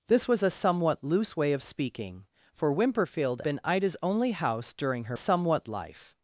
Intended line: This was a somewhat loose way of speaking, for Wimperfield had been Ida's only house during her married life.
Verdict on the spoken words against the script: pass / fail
fail